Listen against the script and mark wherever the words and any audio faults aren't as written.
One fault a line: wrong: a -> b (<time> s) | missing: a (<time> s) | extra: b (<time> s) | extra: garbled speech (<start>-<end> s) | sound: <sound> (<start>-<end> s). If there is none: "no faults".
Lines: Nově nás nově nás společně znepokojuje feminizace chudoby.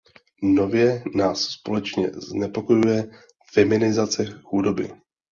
missing: nově nás (1.4 s)